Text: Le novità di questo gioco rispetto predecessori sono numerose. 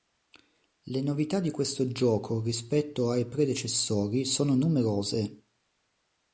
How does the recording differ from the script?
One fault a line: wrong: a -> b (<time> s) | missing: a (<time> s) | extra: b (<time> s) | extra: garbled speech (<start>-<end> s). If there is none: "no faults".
extra: ai (3.1 s)